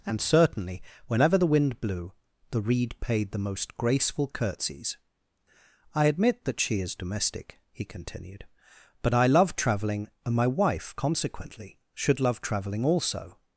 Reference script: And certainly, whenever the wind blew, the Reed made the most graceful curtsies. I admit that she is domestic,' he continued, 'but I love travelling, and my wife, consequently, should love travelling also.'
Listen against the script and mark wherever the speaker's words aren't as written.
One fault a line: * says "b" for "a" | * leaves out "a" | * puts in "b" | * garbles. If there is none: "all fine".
* says "paid" for "made"